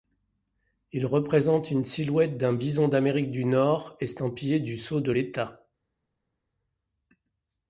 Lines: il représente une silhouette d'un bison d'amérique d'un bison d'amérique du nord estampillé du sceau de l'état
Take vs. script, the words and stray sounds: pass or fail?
fail